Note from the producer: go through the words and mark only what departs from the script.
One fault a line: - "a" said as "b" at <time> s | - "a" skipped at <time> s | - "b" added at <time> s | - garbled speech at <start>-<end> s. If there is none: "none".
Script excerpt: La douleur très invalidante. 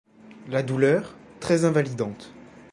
none